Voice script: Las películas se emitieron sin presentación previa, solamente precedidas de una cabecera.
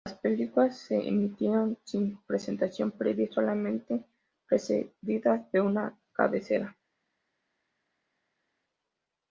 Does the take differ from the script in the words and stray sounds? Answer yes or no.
no